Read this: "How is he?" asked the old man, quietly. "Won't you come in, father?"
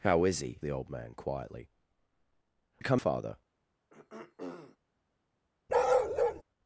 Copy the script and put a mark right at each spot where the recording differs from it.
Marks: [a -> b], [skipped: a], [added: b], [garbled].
"How is he?" [skipped: asked] the old man, quietly. [skipped: "Won't] you come [skipped: in,] father?"